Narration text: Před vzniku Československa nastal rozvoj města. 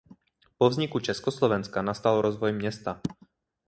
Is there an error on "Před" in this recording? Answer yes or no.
yes